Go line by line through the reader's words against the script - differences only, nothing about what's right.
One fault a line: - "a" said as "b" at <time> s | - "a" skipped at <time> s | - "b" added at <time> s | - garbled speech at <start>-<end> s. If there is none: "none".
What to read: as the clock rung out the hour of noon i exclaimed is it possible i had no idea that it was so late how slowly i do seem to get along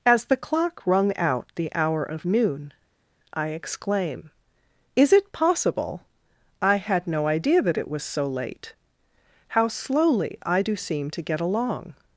- "exclaimed" said as "exclaim" at 3.5 s